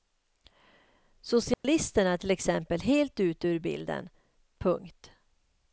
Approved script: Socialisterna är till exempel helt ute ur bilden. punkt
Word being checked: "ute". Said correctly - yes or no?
yes